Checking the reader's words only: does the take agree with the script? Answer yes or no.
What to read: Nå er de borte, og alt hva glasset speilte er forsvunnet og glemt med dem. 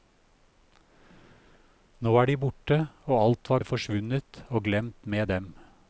no